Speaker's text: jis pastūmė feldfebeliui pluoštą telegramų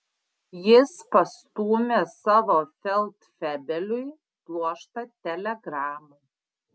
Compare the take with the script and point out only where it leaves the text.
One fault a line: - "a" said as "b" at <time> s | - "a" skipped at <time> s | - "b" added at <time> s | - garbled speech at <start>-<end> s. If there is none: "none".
- "savo" added at 2.1 s